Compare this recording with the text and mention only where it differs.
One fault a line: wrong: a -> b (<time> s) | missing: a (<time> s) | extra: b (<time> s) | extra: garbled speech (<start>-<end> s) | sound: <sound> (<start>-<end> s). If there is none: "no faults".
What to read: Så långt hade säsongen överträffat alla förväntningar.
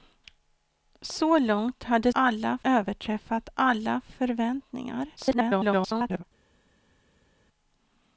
wrong: säsongen -> alla (2.1 s)
extra: garbled speech (5.2-6.2 s)